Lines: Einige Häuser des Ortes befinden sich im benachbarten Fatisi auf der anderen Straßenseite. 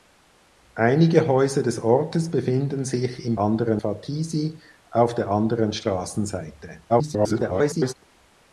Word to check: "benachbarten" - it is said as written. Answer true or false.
false